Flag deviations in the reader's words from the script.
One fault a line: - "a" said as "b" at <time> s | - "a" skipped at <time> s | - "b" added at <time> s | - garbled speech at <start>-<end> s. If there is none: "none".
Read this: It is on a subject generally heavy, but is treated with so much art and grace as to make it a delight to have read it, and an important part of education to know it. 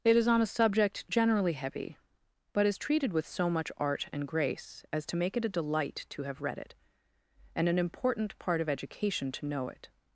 none